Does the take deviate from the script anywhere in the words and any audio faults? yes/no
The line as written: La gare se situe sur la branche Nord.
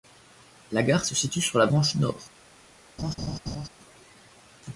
yes